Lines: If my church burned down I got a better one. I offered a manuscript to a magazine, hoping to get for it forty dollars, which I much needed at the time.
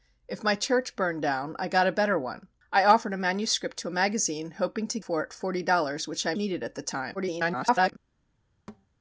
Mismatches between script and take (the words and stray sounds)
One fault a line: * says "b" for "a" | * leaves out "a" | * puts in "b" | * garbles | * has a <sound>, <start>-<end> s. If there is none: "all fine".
* leaves out "get"
* leaves out "much"
* garbles
* has a thud, 8.7-8.9 s